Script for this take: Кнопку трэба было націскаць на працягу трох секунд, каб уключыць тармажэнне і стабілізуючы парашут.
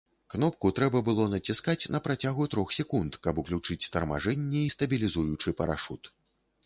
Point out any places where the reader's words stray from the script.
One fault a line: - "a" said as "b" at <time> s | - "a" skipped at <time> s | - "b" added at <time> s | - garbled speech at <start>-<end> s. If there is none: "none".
none